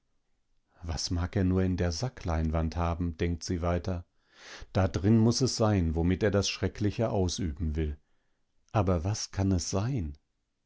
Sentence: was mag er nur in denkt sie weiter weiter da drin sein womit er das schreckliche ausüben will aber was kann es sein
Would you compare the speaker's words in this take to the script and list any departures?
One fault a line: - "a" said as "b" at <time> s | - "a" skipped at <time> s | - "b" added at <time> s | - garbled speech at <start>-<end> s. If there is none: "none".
- "der sackleinwand haben" added at 1.8 s
- "weiter" skipped at 4.0 s
- "muß es" added at 5.2 s